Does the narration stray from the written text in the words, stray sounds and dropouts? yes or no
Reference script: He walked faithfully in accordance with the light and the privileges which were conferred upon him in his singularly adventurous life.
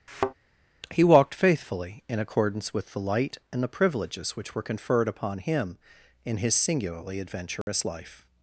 yes